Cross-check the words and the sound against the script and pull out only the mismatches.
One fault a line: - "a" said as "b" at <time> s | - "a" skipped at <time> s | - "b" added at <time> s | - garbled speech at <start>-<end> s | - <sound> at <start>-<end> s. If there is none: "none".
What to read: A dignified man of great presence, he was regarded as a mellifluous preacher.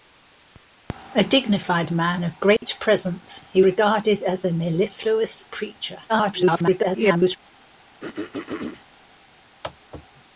- dropout at 2.6-2.6 s
- "was" skipped at 3.6 s
- garbled speech at 6.1-7.4 s
- throat clearing at 8.0-8.9 s